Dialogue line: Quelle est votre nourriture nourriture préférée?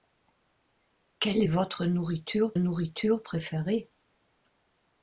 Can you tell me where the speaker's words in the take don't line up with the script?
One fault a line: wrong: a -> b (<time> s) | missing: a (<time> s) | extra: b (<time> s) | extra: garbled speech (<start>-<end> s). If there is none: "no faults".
no faults